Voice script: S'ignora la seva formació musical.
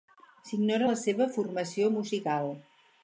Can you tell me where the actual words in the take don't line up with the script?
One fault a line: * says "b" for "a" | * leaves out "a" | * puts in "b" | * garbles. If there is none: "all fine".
all fine